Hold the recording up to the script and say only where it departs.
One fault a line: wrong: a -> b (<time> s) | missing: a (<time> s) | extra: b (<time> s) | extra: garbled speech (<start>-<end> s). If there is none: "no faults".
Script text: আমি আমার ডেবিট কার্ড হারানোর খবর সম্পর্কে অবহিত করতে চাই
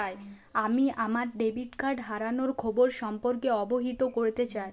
no faults